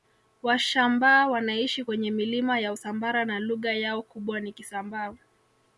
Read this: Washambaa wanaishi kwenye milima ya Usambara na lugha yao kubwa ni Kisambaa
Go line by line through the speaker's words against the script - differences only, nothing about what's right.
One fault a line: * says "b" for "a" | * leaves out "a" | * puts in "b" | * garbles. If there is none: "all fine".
all fine